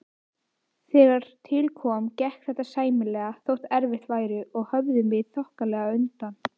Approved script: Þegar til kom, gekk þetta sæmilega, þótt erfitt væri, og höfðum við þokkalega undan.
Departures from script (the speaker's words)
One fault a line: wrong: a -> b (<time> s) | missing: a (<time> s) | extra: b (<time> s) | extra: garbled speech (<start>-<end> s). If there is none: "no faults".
no faults